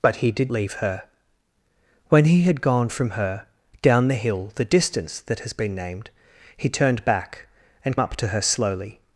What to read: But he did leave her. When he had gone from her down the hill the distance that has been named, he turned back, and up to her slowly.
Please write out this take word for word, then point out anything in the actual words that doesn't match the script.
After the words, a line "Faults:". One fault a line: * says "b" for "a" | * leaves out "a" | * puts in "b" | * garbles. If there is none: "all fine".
But he did leave her. When he had gone from her down the hill the distance that has been named, he turned back, and up to her slowly.
Faults:
all fine